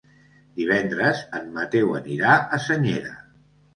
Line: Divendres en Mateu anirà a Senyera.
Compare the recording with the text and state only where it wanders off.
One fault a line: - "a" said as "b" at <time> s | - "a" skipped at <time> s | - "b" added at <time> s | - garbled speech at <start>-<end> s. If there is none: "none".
none